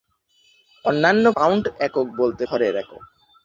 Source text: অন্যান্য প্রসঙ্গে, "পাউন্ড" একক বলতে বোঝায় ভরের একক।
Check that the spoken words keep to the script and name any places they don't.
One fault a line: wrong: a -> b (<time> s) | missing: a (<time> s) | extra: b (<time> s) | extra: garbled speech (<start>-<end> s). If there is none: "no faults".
missing: প্রসঙ্গে (1.2 s)
missing: বোঝায় (2.4 s)